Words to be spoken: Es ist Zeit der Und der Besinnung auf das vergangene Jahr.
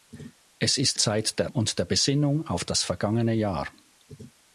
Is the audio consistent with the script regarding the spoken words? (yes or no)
yes